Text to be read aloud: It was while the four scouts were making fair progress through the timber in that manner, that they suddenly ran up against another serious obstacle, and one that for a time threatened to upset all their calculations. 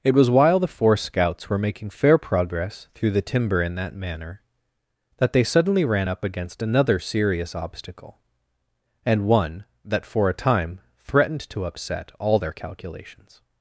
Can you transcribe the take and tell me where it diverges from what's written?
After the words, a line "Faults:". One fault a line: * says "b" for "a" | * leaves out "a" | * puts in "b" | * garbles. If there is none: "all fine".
It was while the four scouts were making fair progress through the timber in that manner, that they suddenly ran up against another serious obstacle, and one that for a time threatened to upset all their calculations.
Faults:
all fine